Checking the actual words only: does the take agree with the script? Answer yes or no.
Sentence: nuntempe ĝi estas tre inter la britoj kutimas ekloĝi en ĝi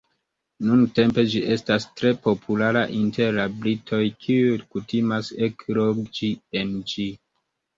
no